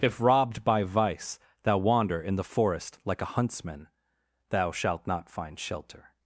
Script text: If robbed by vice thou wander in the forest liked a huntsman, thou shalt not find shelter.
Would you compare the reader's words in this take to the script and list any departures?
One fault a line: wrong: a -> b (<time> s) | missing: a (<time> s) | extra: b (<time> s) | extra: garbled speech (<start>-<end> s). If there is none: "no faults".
wrong: liked -> like (3.0 s)